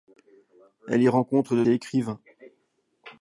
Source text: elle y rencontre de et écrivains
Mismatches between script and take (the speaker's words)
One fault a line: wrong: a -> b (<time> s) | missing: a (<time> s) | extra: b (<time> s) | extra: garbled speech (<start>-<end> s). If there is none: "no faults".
no faults